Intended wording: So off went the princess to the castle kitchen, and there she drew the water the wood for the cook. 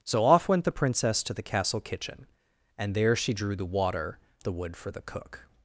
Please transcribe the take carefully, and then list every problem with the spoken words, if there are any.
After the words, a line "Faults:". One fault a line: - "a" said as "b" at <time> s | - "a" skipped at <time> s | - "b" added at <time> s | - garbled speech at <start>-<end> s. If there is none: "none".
So off went the princess to the castle kitchen, and there she drew the water the wood for the cook.
Faults:
none